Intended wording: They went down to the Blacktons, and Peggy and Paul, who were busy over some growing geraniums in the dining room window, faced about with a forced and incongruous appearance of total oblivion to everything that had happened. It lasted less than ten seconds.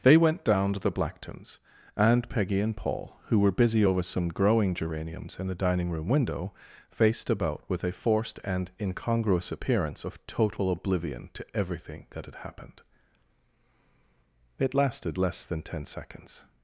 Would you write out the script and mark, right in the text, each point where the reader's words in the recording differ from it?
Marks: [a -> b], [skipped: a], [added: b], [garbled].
They went down to the Blacktons, and Peggy and Paul, who were busy over some growing geraniums in the dining room window, faced about with a forced and incongruous appearance of total oblivion to everything that had happened. It lasted less than ten seconds.